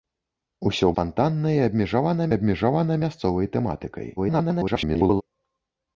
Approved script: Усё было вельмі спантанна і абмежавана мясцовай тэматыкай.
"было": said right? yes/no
no